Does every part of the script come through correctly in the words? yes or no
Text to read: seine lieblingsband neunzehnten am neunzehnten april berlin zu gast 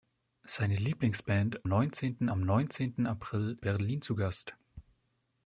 yes